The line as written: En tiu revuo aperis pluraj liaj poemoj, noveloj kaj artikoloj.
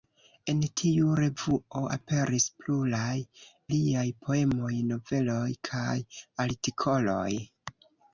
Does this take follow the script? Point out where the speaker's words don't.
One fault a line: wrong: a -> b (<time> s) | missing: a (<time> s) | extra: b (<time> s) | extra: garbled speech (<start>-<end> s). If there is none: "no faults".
no faults